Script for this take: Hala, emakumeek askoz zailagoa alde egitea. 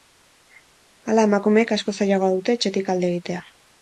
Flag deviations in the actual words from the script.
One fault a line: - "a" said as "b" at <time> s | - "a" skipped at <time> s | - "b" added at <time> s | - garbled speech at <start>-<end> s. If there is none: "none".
- "dute etxetik" added at 2.4 s